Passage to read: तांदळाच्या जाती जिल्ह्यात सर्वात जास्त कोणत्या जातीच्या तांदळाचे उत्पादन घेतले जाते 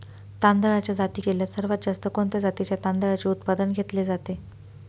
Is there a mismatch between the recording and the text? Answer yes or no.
no